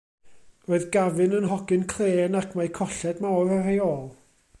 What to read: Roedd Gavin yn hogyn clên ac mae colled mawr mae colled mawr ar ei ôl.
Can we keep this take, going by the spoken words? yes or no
no